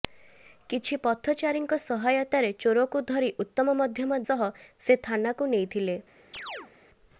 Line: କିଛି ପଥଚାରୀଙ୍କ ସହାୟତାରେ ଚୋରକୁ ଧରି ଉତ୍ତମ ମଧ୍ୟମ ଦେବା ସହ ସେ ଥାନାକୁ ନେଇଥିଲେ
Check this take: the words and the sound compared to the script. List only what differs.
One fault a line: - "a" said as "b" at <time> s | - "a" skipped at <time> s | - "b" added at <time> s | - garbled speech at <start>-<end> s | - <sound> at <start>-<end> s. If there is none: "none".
- "ଦେବା" skipped at 4.2 s
- chirp at 6.3-6.7 s